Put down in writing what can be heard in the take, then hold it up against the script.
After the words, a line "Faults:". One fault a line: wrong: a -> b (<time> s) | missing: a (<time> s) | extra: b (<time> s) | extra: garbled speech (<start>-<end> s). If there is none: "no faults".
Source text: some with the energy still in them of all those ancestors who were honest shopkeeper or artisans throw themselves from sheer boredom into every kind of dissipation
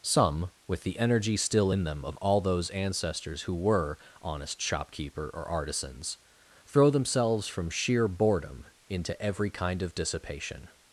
some with the energy still in them of all those ancestors who were honest shopkeeper or artisans throw themselves from sheer boredom into every kind of dissipation
Faults:
no faults